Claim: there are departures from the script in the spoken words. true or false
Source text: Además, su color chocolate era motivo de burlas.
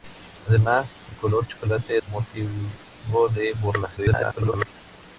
true